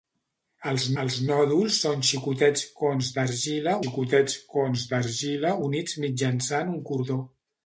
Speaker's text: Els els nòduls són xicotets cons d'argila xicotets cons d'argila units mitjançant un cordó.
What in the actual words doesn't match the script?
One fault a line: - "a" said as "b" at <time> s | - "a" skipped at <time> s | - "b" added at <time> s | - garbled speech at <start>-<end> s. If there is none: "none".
none